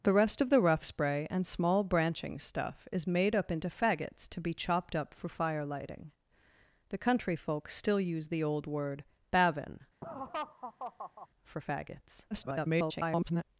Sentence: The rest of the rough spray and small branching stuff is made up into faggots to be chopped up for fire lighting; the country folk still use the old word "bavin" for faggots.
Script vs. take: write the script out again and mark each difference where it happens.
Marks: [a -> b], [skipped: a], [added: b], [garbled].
The rest of the rough spray and small branching stuff is made up into faggots to be chopped up for fire lighting; the country folk still use the old word "bavin" for faggots. [garbled]